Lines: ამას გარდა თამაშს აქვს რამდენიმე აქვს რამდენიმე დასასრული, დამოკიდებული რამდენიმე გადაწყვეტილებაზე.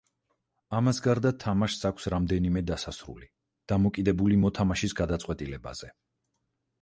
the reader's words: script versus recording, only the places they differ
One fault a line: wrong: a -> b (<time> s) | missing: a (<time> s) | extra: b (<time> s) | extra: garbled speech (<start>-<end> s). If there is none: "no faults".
missing: აქვს რამდენიმე (2.6 s)
wrong: რამდენიმე -> მოთამაშის (4.5 s)